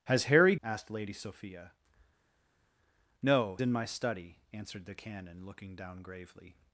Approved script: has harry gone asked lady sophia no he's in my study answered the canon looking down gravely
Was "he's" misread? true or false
true